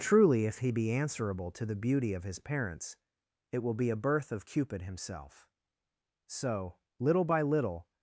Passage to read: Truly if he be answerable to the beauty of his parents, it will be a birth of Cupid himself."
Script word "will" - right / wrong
right